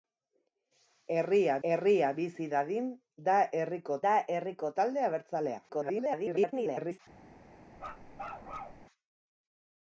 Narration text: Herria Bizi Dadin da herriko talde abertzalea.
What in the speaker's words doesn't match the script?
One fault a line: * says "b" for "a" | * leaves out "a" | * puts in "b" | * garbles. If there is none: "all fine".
* puts in "herria"
* puts in "da herriko"
* garbles